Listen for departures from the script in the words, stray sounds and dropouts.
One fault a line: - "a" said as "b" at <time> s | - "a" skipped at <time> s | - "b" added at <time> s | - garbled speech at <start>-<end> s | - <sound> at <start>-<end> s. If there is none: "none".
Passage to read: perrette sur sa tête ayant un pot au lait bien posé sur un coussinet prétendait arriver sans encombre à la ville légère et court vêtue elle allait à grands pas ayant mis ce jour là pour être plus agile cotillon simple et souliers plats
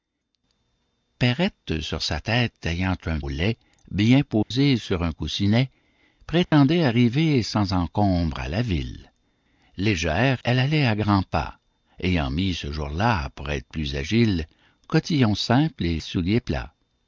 - "pot" skipped at 3.2 s
- dropout at 4.4-4.5 s
- dropout at 6.4-6.5 s
- "et court vêtue" skipped at 10.4 s